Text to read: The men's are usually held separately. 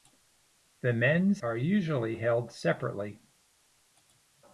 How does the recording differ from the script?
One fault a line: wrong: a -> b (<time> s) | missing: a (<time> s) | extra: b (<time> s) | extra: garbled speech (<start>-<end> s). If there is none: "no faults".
no faults